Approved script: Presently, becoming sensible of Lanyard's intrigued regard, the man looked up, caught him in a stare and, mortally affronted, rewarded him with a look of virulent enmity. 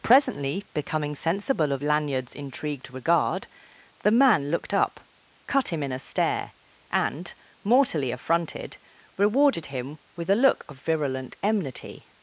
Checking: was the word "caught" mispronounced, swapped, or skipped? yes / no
yes